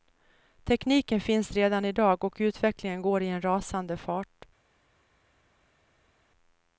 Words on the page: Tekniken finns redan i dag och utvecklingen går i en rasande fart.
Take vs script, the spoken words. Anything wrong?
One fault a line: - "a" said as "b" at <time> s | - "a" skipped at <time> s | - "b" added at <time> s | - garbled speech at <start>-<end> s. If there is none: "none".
none